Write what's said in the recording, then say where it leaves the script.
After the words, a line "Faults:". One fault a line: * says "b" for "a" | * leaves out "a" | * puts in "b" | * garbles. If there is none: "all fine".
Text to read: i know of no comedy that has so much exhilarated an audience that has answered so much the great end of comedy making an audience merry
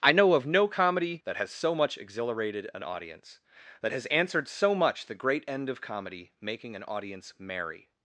i know of no comedy that has so much exhilarated an audience that has answered so much the great end of comedy making an audience merry
Faults:
all fine